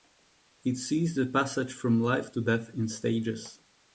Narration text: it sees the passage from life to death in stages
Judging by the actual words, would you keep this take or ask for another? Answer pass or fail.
pass